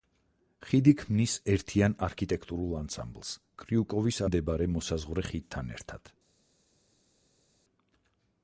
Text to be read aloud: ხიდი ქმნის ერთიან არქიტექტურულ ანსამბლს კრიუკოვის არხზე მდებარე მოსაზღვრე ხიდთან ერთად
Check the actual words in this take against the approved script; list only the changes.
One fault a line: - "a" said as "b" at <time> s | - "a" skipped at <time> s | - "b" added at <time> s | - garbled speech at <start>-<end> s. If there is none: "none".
- "არხზე" skipped at 4.2 s